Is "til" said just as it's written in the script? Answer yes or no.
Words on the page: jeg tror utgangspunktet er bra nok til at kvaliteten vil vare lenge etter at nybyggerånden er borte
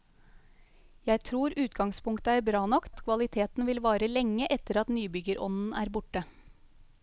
no